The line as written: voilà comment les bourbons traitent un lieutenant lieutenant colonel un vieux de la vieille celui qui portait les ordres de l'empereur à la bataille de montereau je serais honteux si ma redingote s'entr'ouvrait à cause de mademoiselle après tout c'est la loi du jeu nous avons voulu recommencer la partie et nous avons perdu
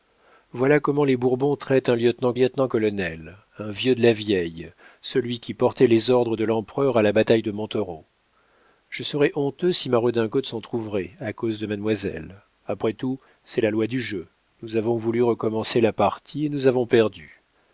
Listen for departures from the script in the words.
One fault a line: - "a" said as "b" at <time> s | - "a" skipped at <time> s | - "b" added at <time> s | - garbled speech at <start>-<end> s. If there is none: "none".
none